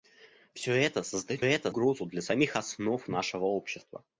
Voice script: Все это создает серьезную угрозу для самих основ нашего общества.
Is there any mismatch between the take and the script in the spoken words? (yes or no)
yes